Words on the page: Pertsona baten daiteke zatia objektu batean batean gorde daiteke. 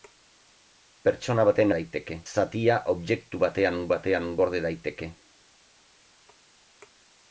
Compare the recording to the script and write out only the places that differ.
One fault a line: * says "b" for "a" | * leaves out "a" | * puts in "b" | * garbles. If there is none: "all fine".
all fine